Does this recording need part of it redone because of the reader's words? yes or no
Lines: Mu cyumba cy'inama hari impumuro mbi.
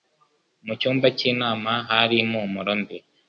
no